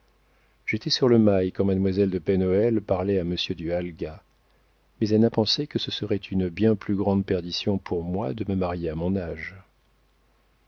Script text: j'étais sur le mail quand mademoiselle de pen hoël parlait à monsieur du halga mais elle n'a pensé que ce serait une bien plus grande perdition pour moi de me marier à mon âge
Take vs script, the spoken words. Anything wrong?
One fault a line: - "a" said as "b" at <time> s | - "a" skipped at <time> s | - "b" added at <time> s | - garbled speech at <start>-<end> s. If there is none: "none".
none